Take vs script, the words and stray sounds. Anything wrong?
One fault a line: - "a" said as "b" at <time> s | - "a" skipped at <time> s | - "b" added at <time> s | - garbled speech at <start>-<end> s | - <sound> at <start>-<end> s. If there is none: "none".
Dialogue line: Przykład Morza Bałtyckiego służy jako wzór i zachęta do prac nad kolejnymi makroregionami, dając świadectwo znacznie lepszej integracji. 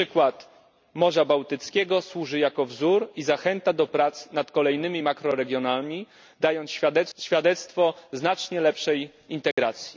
- dropout at 9.5-9.6 s